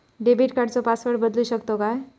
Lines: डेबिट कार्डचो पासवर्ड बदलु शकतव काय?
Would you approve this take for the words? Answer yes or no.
yes